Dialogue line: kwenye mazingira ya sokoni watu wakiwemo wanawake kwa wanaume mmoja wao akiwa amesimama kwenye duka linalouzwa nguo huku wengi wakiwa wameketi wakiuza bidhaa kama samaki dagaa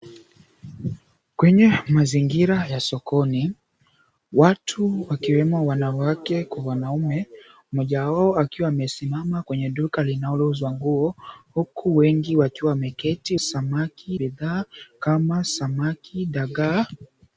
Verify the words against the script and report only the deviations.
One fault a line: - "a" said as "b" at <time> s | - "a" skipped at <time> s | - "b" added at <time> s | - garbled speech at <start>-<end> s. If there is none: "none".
- "wakiuza" said as "samaki" at 13.4 s